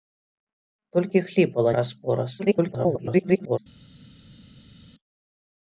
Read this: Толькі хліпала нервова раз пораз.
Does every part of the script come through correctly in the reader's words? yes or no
no